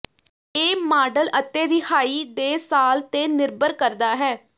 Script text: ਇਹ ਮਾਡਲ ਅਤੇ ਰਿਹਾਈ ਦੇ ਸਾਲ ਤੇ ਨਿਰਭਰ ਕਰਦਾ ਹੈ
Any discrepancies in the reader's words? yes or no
no